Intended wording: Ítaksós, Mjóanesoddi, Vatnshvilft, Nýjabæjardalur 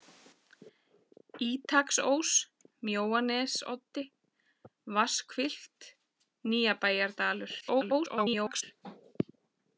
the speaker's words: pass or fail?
fail